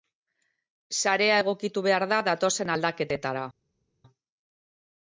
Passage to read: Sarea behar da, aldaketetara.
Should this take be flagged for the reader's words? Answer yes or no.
yes